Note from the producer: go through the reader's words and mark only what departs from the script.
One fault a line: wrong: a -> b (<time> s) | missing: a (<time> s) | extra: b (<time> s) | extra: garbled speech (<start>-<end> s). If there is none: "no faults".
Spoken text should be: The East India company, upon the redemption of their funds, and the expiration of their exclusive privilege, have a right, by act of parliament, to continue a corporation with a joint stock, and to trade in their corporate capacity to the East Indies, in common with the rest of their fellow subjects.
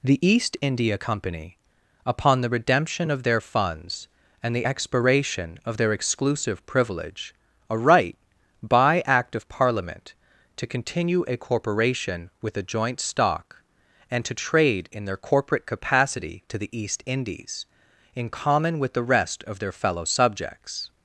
missing: have (7.3 s)